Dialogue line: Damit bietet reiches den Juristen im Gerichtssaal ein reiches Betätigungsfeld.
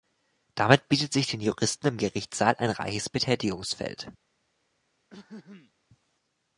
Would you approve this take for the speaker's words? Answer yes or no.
no